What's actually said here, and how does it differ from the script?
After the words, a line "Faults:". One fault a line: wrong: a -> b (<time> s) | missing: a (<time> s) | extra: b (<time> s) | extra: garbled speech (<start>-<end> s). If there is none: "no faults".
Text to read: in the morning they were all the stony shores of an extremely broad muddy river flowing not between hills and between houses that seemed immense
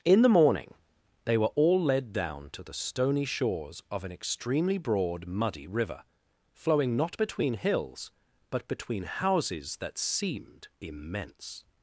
in the morning they were all led down to the stony shores of an extremely broad muddy river flowing not between hills but between houses that seemed immense
Faults:
extra: led down to (1.8 s)
wrong: and -> but (8.5 s)